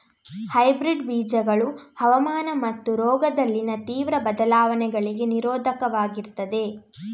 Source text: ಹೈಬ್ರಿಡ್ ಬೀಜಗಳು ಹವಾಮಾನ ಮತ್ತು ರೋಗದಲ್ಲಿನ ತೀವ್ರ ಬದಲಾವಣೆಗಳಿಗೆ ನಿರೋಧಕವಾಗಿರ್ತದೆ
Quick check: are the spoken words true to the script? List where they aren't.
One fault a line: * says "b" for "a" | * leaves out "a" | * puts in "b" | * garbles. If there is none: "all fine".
all fine